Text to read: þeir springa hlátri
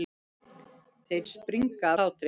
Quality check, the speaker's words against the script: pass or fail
pass